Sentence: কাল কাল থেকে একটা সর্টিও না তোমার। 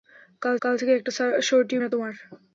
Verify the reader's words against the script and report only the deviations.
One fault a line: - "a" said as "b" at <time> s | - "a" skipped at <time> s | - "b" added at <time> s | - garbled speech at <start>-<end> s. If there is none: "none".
none